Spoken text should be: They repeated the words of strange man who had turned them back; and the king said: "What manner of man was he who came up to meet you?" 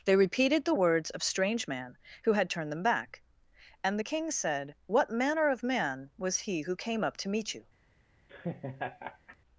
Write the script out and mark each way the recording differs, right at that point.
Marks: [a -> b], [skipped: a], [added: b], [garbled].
They repeated the words of strange man who had turned them back; and the king said: "What manner of man was he who came up to meet you?"